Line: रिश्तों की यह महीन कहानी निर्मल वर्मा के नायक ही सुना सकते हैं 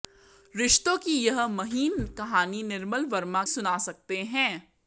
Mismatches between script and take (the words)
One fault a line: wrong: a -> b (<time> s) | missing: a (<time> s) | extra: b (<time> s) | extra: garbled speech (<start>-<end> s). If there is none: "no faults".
missing: के नायक ही (3.4 s)